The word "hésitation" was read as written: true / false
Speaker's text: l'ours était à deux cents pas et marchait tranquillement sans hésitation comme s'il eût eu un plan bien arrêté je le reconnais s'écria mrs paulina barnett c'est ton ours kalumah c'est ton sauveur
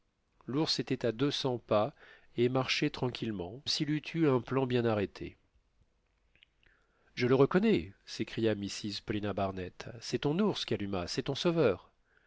false